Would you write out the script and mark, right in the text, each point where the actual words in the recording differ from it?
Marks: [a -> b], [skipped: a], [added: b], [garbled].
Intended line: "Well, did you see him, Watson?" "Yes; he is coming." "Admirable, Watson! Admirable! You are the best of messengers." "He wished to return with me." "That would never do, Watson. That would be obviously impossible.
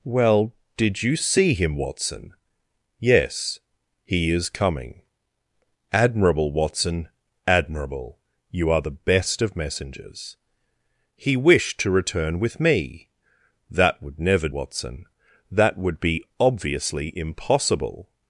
"Well, did you see him, Watson?" "Yes; he is coming." "Admirable, Watson! Admirable! You are the best of messengers." "He wished to return with me." "That would never [skipped: do,] Watson. That would be obviously impossible.